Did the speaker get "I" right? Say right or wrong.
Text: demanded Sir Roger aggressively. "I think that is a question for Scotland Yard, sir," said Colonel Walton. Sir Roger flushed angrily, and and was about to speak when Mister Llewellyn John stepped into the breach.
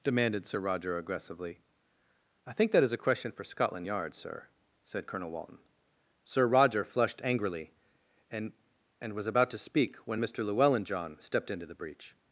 right